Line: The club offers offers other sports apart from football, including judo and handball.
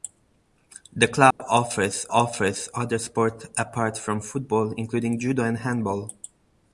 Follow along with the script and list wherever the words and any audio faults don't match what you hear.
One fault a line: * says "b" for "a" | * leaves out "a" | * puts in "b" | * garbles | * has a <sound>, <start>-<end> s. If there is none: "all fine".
* has a dropout, 1.3-1.4 s